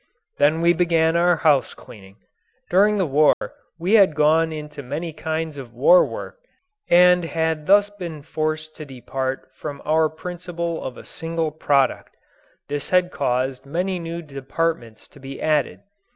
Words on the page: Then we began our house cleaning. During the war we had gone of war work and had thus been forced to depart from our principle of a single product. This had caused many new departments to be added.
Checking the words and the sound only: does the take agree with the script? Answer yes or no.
no